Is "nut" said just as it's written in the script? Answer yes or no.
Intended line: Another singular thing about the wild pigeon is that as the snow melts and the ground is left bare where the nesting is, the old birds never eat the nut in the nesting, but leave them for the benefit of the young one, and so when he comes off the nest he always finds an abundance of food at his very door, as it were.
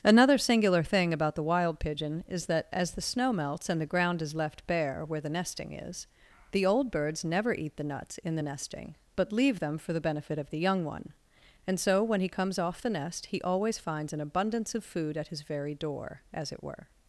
no